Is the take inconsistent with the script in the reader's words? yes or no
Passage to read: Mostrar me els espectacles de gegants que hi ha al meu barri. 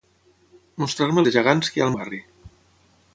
yes